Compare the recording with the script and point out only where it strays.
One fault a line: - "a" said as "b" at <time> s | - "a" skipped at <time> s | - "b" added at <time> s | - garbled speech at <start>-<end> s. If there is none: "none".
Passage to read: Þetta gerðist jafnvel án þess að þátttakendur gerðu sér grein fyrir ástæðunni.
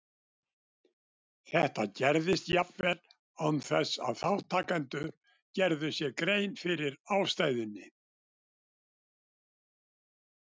none